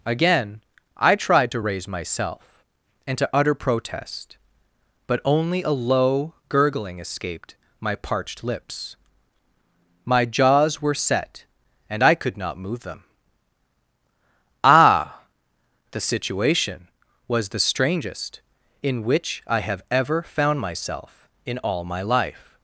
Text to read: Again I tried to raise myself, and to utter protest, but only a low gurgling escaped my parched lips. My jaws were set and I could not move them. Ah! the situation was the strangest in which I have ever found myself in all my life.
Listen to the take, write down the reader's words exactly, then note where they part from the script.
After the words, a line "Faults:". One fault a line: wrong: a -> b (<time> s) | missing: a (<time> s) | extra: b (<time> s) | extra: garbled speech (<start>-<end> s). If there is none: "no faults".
Again I tried to raise myself, and to utter protest, but only a low gurgling escaped my parched lips. My jaws were set and I could not move them. Ah! the situation was the strangest in which I have ever found myself in all my life.
Faults:
no faults